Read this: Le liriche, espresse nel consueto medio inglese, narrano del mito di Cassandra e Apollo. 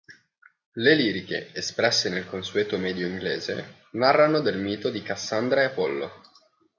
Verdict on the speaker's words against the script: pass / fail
pass